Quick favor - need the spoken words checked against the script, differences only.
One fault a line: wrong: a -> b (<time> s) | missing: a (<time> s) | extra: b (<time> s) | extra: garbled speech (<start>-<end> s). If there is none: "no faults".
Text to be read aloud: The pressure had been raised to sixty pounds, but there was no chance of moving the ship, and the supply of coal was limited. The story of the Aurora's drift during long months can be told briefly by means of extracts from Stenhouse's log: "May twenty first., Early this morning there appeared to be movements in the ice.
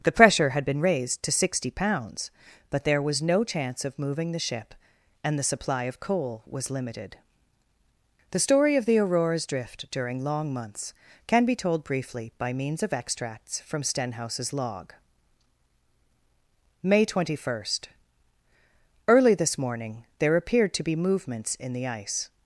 no faults